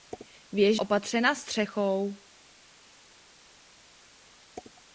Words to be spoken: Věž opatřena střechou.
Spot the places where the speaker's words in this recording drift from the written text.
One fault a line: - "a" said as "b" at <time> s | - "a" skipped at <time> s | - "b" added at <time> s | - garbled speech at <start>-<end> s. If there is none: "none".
none